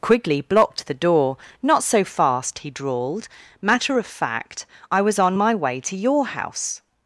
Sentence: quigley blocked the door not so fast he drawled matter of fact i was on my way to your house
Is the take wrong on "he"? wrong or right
right